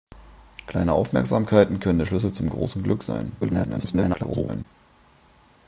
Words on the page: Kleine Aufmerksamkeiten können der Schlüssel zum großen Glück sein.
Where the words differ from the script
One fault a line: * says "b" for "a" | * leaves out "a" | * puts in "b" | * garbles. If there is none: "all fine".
* garbles